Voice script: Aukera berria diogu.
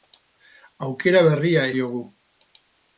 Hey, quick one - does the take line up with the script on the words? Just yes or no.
yes